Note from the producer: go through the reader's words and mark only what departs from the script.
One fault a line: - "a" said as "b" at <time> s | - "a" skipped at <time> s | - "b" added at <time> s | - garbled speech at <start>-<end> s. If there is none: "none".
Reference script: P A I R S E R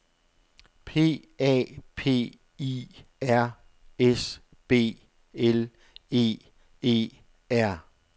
- "P" added at 1.9 s
- "B L E" added at 4.7 s